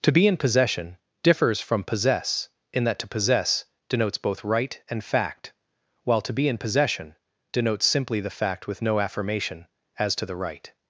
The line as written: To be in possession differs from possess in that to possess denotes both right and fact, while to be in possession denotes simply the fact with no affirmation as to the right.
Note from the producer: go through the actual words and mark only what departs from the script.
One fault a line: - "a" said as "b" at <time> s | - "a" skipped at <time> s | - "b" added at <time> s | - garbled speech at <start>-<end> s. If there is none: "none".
none